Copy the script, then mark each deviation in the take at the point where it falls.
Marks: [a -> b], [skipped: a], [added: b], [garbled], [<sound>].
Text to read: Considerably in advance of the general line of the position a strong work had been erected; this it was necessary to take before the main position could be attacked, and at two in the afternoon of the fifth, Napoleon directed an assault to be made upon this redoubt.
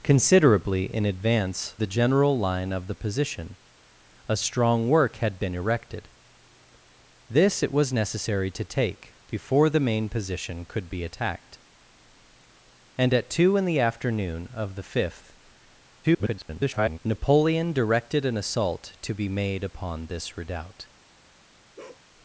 Considerably in advance [skipped: of] the general line of the position a strong work had been erected; this it was necessary to take before the main position could be attacked, and at two in the afternoon of the fifth, [garbled] Napoleon directed an assault to be made upon this redoubt. [bark]